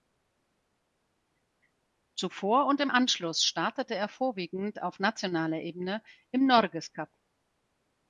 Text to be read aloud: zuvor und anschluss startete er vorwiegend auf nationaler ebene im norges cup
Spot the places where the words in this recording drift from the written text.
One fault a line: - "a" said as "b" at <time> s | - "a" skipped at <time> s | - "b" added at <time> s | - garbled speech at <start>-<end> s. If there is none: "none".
- "im" added at 2.8 s